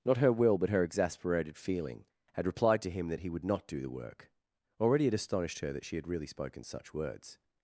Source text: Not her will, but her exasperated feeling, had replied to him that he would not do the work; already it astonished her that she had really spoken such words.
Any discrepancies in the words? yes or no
no